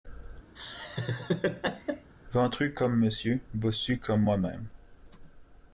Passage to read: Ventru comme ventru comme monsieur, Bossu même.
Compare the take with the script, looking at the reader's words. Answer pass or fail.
fail